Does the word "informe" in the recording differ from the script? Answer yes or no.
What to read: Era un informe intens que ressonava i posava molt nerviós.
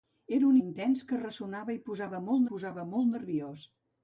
yes